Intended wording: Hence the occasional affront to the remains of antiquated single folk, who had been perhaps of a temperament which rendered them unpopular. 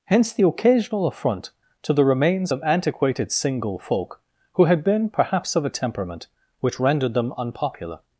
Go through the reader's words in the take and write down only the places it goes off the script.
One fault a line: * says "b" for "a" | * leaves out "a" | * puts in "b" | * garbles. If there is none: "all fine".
all fine